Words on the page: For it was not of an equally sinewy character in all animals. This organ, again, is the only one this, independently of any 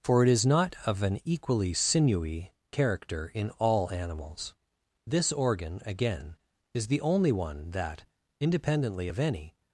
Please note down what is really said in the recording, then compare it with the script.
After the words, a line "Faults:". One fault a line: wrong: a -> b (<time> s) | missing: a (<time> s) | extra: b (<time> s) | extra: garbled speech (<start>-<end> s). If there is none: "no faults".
For it is not of an equally sinewy character in all animals. This organ, again, is the only one that, independently of any
Faults:
wrong: was -> is (0.3 s)
wrong: this -> that (7.7 s)